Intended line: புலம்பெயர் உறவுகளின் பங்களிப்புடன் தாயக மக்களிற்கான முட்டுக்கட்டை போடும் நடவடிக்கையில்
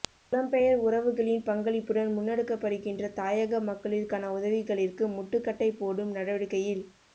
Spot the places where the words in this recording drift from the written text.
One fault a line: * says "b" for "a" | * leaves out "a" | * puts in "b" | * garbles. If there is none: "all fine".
* puts in "முன்னெடுக்கப்படுகின்ற"
* puts in "உதவிகளிற்கு"